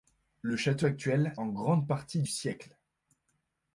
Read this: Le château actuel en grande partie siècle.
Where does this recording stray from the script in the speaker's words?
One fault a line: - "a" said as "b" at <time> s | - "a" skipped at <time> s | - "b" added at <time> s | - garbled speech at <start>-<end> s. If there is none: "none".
none